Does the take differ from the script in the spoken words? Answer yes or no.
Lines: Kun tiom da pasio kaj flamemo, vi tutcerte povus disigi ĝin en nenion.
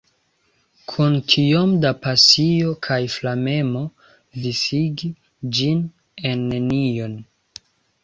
yes